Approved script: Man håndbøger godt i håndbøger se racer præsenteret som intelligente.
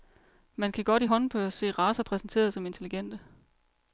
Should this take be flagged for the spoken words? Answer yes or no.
yes